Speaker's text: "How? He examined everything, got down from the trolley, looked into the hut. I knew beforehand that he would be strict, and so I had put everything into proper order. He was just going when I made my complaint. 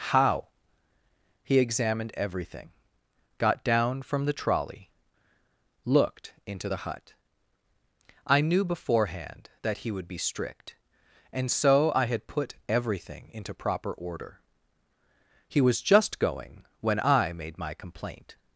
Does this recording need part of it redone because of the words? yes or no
no